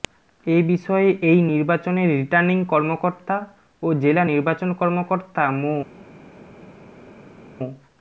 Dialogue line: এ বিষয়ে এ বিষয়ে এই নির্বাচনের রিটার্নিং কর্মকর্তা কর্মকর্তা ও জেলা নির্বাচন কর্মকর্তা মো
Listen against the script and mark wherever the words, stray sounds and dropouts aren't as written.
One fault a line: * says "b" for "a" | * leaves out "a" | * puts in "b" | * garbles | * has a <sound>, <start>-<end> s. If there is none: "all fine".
* leaves out "এ বিষয়ে"
* leaves out "কর্মকর্তা"